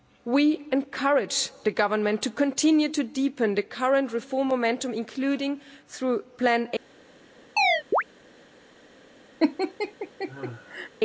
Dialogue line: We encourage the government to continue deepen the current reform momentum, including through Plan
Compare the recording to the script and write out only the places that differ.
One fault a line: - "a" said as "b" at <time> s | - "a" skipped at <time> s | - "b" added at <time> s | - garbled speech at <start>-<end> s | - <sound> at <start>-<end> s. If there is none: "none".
- "to" added at 2.9 s
- chirp at 7.6-8.0 s
- laugh at 9.4-10.9 s